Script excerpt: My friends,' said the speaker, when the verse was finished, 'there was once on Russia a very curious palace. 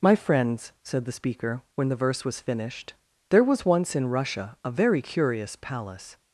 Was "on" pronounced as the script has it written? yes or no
no